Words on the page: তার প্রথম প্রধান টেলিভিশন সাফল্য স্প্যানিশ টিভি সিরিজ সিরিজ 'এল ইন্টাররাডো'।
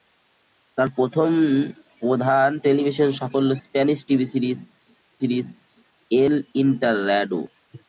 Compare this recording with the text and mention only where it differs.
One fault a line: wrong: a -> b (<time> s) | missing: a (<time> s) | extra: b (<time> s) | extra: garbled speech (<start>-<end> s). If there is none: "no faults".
no faults